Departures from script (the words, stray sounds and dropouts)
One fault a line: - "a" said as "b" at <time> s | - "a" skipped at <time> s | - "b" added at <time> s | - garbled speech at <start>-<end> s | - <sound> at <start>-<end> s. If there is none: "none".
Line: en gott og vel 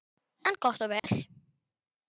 - dropout at 1.0-1.0 s